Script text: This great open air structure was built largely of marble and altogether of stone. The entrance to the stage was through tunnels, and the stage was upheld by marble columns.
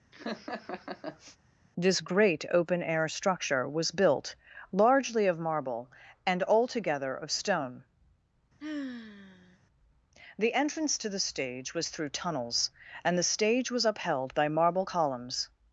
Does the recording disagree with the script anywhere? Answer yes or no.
no